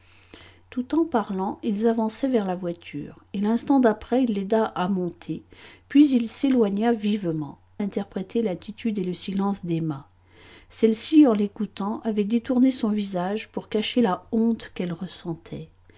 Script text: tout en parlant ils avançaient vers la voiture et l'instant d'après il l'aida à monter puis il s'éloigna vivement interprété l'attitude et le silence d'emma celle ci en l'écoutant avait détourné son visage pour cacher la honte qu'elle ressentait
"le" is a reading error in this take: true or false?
false